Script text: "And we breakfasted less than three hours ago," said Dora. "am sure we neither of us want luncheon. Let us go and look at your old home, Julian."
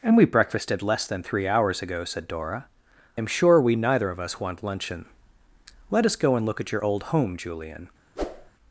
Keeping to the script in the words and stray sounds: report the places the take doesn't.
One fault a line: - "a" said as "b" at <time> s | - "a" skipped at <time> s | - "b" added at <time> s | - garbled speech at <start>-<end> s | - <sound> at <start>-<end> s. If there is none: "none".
- whoosh at 8.2-8.5 s